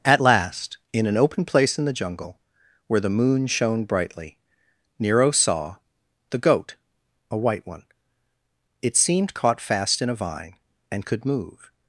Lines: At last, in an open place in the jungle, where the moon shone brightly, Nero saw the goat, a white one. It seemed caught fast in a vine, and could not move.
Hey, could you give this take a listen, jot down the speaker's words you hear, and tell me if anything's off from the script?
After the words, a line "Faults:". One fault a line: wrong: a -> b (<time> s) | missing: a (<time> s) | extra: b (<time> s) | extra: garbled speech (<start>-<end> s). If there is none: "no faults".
At last, in an open place in the jungle, where the moon shone brightly, Nero saw the goat, a white one. It seemed caught fast in a vine, and could move.
Faults:
missing: not (11.3 s)